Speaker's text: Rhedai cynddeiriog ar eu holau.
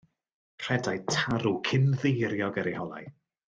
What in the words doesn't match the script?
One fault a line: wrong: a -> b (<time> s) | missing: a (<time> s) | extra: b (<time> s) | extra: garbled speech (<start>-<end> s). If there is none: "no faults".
extra: tarw (1.1 s)